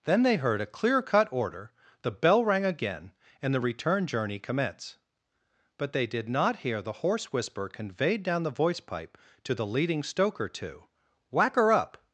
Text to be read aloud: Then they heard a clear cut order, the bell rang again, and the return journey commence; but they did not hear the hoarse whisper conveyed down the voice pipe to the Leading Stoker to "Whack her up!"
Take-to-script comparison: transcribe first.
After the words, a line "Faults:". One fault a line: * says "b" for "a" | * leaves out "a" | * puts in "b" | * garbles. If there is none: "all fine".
Then they heard a clear cut order, the bell rang again, and the return journey commence; but they did not hear the hoarse whisper conveyed down the voice pipe to the Leading Stoker to "Whack her up!"
Faults:
all fine